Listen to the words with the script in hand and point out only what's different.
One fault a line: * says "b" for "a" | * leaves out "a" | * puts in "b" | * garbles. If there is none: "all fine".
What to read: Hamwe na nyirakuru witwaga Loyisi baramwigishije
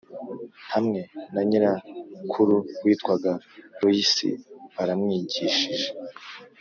all fine